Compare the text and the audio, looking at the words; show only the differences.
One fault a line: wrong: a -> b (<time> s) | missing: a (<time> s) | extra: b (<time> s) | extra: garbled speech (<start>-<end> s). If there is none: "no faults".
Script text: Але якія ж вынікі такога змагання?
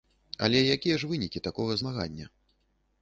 no faults